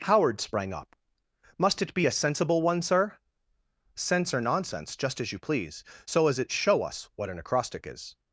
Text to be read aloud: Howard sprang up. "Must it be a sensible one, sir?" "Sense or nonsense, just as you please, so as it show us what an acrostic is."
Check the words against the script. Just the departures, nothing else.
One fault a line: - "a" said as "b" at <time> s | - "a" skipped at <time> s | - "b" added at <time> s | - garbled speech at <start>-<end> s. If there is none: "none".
none